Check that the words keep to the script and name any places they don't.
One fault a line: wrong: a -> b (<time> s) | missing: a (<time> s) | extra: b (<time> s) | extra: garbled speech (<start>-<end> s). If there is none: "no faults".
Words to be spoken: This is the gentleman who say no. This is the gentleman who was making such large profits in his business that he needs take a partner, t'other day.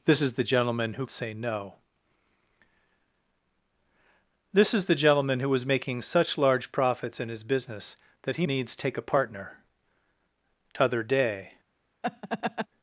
no faults